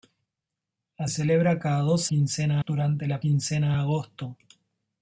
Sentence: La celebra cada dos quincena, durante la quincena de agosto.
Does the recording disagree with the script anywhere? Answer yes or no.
no